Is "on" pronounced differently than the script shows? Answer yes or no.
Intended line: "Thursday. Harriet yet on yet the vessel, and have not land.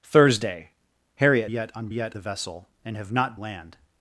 no